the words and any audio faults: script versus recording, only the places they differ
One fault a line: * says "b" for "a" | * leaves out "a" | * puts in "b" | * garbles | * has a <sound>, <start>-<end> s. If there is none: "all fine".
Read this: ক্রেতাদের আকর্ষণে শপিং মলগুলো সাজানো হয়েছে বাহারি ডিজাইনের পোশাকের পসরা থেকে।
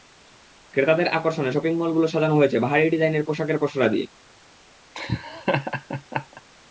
* says "দিয়ে" for "থেকে"
* has a laugh, 4.9-6.4 s